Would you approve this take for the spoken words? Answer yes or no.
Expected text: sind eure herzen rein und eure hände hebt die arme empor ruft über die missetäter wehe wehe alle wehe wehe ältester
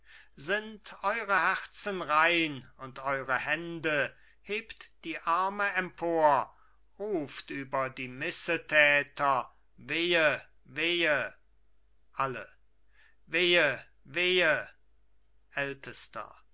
yes